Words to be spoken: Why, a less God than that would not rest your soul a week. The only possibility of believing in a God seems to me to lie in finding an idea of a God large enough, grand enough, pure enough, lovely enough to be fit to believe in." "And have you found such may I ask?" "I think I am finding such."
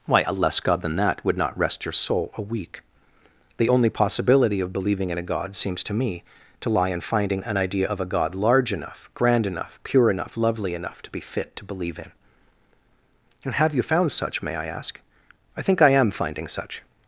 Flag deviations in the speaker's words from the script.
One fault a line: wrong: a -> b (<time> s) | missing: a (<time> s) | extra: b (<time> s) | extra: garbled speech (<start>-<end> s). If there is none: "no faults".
no faults